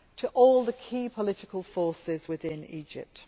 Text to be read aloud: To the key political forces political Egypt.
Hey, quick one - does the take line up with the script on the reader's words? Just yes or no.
no